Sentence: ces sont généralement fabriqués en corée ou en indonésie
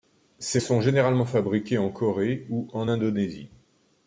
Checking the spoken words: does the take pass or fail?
pass